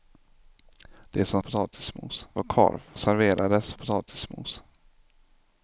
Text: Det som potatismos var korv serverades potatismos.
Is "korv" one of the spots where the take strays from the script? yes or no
no